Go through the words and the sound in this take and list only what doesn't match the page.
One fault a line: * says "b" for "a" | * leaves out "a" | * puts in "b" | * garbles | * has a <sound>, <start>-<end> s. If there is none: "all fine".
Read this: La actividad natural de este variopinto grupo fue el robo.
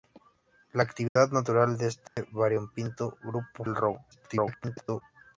* has a dropout, 1.1-1.2 s
* has a dropout, 2.1-2.2 s
* leaves out "fue"
* garbles